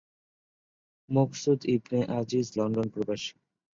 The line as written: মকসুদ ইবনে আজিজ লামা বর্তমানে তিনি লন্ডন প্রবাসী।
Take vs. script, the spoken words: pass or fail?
fail